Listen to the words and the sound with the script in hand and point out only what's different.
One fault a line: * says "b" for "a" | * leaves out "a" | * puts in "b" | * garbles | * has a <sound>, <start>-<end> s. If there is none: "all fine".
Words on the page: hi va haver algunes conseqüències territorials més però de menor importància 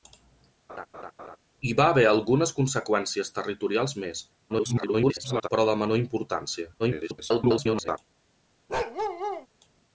* has a laugh, 0.7-1.4 s
* garbles
* garbles
* has a bark, 8.7-9.5 s